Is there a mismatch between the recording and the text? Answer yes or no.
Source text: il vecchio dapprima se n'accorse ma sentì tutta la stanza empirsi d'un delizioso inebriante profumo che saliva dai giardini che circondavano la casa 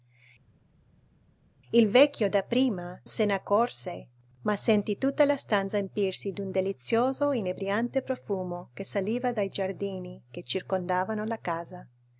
no